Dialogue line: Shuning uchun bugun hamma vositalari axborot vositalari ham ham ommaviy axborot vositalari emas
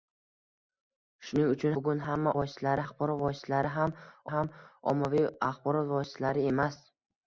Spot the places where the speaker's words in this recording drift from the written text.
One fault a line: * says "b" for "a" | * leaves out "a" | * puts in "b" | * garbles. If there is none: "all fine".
all fine